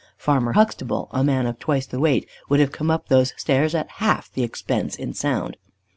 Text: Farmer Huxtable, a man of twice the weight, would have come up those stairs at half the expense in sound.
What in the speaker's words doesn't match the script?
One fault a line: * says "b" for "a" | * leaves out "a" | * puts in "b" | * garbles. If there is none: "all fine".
all fine